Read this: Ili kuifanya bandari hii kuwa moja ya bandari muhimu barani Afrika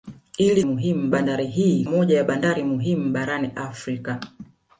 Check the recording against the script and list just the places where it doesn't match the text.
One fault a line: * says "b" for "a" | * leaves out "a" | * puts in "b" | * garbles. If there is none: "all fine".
* says "muhimu" for "kuifanya"
* leaves out "kuwa"